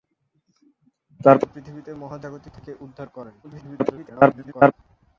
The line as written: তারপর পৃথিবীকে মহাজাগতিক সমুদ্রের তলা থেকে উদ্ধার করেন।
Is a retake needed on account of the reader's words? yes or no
yes